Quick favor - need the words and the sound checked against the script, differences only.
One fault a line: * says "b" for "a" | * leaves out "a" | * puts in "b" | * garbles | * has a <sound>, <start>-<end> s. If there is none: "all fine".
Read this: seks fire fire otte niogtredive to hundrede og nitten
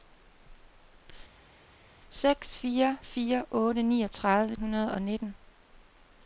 * leaves out "to"